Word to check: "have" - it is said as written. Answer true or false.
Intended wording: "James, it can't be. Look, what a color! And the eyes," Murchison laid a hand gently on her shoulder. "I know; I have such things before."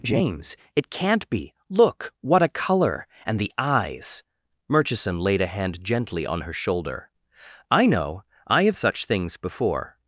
true